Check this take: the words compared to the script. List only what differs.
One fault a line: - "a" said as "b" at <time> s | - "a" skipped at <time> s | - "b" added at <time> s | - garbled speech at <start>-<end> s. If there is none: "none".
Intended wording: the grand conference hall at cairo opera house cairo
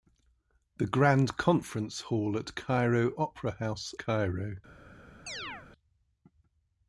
none